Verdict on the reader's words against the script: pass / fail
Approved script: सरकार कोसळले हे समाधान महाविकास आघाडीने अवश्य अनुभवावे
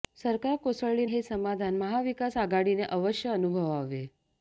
pass